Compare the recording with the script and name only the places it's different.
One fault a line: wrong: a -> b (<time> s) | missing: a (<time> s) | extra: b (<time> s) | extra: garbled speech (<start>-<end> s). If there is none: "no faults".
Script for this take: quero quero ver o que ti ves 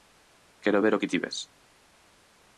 missing: quero (0.8 s)